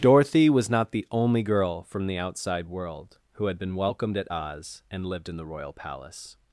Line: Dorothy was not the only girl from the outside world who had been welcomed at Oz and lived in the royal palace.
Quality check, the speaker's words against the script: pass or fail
pass